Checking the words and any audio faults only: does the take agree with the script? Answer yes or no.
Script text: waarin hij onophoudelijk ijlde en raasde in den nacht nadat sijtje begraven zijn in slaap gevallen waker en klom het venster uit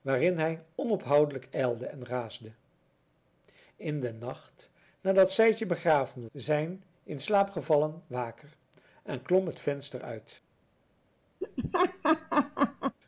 no